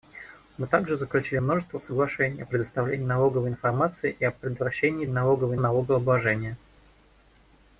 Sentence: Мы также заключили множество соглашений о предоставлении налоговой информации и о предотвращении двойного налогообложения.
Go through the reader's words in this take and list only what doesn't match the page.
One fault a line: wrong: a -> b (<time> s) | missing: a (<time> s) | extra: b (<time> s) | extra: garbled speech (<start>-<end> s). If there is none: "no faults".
wrong: двойного -> налоговой (5.1 s)